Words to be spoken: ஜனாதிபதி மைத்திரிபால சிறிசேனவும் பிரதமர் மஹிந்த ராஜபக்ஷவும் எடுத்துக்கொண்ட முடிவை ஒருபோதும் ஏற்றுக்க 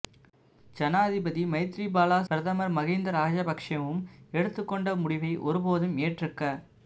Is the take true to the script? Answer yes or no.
no